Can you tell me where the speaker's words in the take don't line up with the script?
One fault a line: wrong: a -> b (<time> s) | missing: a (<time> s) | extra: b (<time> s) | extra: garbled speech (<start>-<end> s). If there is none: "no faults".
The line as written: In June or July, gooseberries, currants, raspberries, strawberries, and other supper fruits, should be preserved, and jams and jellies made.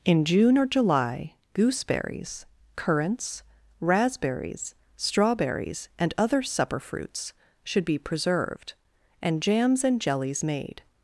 no faults